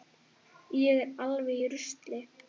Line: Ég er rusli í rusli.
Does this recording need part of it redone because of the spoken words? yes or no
yes